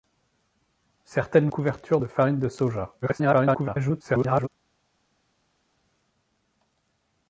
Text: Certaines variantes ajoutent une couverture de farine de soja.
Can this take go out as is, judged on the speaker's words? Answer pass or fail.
fail